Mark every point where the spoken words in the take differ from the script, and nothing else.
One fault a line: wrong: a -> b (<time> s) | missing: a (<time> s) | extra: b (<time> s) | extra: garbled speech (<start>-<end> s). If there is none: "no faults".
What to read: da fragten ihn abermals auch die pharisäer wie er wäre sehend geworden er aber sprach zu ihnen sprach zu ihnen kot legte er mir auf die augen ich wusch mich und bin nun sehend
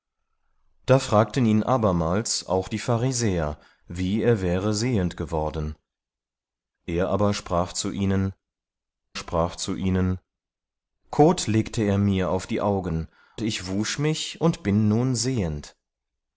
no faults